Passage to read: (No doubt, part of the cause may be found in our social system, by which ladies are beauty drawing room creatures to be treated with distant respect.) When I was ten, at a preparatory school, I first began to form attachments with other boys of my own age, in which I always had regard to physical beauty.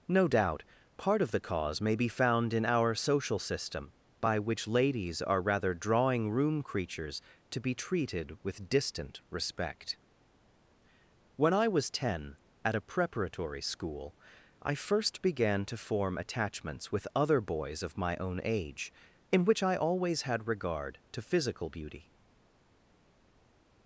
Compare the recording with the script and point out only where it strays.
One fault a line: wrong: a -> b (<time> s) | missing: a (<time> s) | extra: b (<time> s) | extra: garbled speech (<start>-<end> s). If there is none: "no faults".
wrong: beauty -> rather (5.4 s)